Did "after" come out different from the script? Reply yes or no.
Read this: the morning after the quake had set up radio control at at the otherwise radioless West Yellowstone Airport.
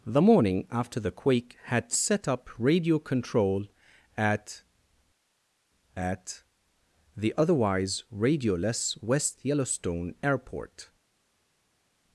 no